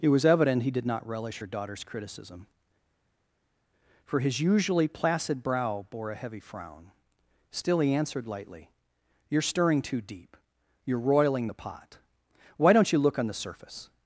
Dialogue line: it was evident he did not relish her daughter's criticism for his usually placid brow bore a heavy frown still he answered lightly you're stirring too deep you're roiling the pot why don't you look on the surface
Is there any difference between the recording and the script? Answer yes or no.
no